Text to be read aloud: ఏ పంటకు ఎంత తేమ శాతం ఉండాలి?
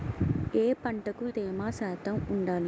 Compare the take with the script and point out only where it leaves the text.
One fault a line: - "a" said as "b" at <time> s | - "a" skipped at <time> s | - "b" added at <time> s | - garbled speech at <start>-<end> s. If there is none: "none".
- "ఎంత" skipped at 1.2 s